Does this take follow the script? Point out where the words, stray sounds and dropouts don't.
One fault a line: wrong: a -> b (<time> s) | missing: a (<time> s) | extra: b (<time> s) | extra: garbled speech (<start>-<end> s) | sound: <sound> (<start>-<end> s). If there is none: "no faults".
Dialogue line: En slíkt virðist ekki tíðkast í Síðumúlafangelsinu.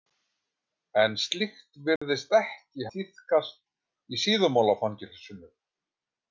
sound: dropout (2.0-2.0 s)